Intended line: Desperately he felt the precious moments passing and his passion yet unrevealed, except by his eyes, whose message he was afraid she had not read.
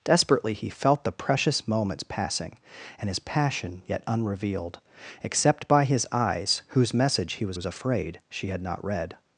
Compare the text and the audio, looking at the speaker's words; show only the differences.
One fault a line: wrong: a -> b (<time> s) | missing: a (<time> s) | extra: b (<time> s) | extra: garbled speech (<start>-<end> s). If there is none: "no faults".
extra: was (7.5 s)